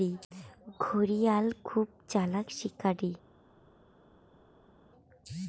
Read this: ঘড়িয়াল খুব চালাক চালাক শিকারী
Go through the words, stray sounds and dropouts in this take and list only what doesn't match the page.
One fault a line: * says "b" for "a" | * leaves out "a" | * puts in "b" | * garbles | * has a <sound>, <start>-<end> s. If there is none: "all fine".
* leaves out "চালাক"